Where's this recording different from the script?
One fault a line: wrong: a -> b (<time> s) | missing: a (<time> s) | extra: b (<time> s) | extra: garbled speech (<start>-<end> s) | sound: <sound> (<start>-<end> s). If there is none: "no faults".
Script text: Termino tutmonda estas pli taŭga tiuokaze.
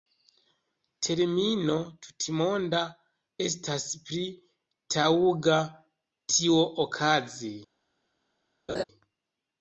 sound: laugh (8.7-8.8 s)